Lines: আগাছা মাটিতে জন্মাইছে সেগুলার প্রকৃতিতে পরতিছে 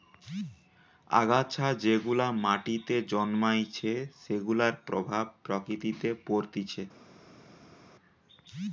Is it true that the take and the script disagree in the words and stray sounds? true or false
true